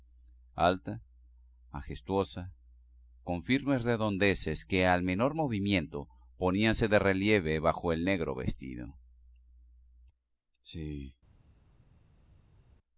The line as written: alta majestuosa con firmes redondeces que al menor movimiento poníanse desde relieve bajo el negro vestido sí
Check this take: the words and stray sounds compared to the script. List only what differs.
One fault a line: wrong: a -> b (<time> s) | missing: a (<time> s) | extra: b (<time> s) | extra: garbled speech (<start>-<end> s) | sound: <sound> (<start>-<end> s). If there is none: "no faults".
wrong: desde -> de (6.9 s)